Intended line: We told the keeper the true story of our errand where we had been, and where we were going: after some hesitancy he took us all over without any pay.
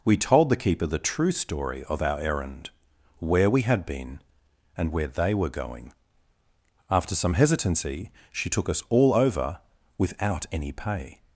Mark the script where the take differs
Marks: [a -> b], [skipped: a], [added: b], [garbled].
We told the keeper the true story of our errand where we had been, and where [we -> they] were going: after some hesitancy [he -> she] took us all over without any pay.